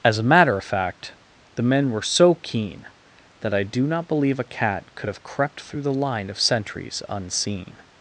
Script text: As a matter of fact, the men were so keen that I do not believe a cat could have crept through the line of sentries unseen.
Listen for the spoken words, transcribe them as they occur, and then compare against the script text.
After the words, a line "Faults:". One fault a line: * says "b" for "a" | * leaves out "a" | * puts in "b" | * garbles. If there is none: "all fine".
As a matter of fact, the men were so keen that I do not believe a cat could have crept through the line of sentries unseen.
Faults:
all fine